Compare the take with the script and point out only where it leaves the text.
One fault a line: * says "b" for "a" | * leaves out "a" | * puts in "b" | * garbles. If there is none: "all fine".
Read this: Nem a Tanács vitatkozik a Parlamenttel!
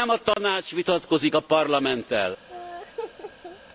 all fine